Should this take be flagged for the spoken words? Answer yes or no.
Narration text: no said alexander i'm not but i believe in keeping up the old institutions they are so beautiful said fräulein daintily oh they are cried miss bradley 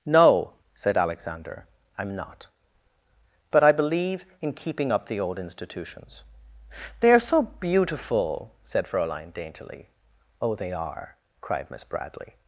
no